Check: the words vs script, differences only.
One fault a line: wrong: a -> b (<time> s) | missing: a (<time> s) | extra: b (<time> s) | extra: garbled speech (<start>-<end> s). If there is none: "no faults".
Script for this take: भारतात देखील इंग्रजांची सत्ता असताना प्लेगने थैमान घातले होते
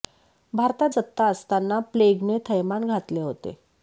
missing: देखील इंग्रजांची (0.9 s)